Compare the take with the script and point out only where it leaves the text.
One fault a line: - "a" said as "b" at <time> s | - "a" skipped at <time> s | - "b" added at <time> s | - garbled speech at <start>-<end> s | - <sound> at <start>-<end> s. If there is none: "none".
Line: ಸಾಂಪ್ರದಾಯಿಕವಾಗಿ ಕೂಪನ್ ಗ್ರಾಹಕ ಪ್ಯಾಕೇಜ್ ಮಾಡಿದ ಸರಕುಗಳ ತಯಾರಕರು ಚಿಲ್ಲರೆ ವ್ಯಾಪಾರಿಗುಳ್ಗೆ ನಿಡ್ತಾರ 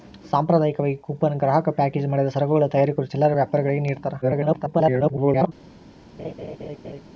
- garbled speech at 4.2-5.5 s
- laugh at 6.2-7.0 s